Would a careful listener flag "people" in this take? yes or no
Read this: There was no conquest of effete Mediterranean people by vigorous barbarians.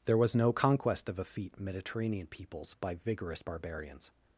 yes